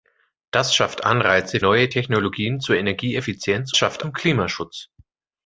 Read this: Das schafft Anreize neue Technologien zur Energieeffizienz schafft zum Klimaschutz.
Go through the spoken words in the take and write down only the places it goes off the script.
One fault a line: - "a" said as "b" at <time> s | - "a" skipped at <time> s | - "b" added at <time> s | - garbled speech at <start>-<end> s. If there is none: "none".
none